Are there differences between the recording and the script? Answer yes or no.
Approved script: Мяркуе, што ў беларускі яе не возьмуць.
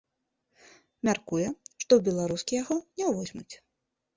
yes